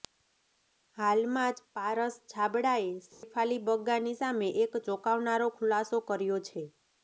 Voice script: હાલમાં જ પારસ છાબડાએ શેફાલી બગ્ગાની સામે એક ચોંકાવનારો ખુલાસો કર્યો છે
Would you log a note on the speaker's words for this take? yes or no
no